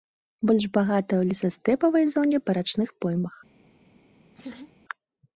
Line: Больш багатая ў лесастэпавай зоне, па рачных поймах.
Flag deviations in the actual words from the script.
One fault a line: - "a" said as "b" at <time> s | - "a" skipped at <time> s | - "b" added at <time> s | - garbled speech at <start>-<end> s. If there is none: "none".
none